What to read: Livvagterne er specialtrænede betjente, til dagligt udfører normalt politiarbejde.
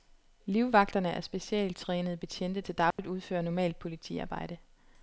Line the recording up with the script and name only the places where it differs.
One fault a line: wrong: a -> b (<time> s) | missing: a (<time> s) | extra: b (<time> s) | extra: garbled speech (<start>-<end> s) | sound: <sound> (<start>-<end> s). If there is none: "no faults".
sound: dropout (2.9-3.0 s)